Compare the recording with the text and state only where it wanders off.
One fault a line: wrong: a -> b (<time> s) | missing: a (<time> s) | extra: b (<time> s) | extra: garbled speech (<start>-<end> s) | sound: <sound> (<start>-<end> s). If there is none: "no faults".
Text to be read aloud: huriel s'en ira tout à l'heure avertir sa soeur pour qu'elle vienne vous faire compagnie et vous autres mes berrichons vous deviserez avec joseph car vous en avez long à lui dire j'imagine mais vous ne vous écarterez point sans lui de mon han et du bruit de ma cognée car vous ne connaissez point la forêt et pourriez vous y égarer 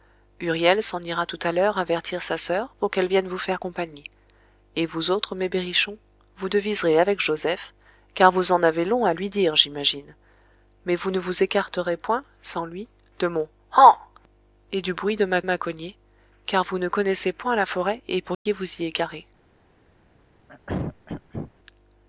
extra: ma (15.4 s)
sound: dropout (18.3-18.5 s)
sound: throat clearing (20.5-21.5 s)